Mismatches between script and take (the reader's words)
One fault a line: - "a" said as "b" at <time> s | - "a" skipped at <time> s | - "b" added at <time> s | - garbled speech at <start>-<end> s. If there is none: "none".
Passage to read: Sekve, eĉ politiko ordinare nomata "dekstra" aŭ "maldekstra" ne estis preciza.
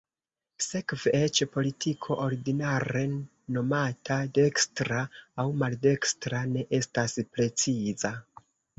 - "estis" said as "estas" at 6.8 s